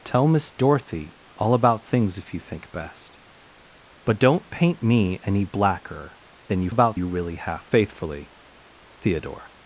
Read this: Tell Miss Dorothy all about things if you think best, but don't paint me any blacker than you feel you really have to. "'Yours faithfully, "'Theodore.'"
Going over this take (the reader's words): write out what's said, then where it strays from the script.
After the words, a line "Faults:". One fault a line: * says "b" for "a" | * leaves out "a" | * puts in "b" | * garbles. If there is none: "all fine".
Tell Miss Dorothy all about things if you think best, but don't paint me any blacker than you about you really have faithfully, "'Theodore.'"
Faults:
* says "about" for "feel"
* leaves out "to Yours"